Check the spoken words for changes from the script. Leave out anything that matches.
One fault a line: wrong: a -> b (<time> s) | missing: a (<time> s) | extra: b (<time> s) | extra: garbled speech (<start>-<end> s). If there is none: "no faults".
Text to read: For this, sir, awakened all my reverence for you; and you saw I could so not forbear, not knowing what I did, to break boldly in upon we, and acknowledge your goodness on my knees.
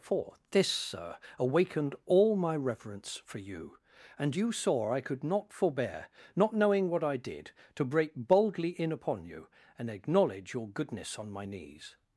missing: so (5.2 s)
wrong: we -> you (9.3 s)